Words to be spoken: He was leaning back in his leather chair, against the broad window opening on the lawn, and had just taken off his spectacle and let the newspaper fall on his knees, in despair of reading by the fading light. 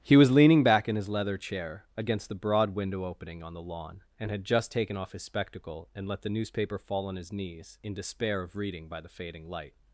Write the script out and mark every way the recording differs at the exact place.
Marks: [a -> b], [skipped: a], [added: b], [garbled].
He was leaning back in his leather chair, against the broad window opening on the lawn, and had just taken off his spectacle and let the newspaper fall on his knees, in despair of reading by the fading light.